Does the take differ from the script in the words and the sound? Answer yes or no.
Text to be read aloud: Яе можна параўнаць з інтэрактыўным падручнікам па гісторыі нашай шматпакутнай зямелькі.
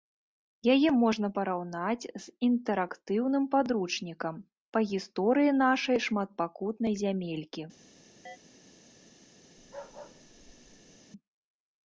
yes